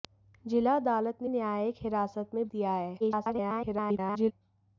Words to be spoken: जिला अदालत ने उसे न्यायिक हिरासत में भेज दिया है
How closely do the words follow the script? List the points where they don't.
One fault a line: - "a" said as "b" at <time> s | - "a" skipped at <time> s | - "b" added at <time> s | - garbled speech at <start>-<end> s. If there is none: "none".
- "उसे" skipped at 1.3 s
- "भेज" skipped at 2.5 s
- garbled speech at 3.0-4.3 s